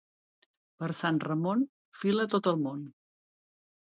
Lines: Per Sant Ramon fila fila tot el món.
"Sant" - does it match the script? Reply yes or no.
yes